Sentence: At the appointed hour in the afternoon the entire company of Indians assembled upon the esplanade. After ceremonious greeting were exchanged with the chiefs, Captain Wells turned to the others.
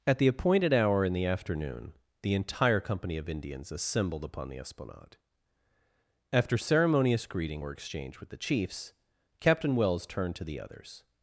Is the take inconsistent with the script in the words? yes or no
no